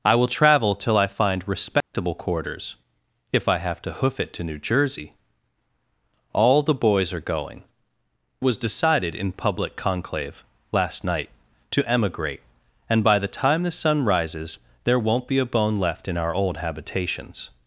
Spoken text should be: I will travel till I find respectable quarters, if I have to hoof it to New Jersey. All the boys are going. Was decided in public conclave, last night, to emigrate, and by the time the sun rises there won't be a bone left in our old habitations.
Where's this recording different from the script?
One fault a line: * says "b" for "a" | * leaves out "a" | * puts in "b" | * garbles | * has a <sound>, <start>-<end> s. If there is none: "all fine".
* has a dropout, 1.8-1.9 s